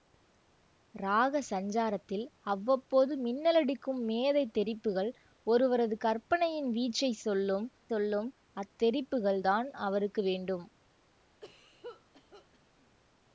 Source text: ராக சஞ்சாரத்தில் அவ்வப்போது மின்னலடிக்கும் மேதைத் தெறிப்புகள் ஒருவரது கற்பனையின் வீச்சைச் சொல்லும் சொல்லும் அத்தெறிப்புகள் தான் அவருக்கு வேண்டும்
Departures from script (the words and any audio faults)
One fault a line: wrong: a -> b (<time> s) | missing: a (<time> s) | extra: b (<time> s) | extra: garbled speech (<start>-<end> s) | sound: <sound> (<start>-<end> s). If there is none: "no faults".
sound: cough (11.4-12.6 s)